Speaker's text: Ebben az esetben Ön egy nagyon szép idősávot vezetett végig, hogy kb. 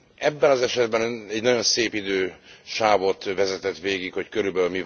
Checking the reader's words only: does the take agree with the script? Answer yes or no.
yes